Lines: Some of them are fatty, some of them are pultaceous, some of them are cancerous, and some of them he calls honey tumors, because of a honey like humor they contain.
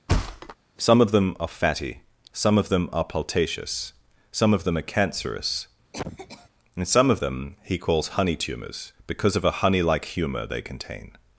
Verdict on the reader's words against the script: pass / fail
pass